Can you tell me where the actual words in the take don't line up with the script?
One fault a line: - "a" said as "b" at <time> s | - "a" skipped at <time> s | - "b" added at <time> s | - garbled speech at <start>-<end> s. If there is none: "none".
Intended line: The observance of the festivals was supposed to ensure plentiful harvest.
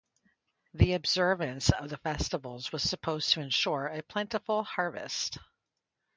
- "a" added at 3.8 s